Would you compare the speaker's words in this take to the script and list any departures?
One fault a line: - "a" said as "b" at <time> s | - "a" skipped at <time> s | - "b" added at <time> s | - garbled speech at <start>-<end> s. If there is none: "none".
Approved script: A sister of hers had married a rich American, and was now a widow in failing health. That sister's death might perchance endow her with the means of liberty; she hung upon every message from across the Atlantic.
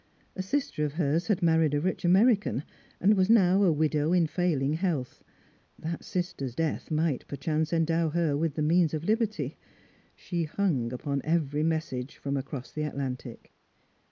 none